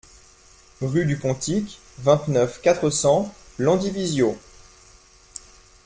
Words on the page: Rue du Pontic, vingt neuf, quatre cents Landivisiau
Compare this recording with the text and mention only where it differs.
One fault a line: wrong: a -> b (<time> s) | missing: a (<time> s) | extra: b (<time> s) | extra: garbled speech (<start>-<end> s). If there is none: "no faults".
no faults